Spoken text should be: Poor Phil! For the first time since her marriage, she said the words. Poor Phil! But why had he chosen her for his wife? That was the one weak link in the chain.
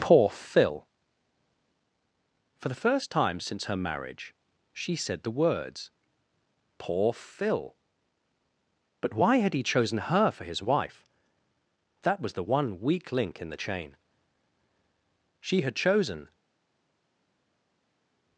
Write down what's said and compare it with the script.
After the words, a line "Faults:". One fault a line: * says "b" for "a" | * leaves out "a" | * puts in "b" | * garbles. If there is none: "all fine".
Poor Phil! For the first time since her marriage, she said the words. Poor Phil! But why had he chosen her for his wife? That was the one weak link in the chain. She had chosen
Faults:
* puts in "She had chosen"